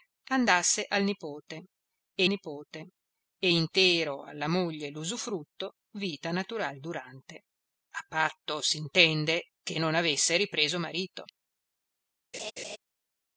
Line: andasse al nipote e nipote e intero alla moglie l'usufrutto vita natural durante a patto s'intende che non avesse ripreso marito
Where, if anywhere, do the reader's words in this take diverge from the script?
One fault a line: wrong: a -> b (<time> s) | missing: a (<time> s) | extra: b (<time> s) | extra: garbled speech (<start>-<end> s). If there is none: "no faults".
no faults